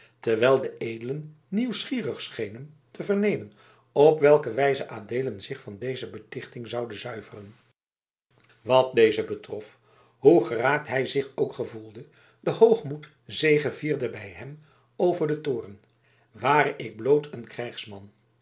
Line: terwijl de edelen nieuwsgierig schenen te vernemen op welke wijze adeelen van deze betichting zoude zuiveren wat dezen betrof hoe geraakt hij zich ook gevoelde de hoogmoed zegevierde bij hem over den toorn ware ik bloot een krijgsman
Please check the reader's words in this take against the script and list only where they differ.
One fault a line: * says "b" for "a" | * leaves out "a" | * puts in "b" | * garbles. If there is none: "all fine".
* puts in "zich"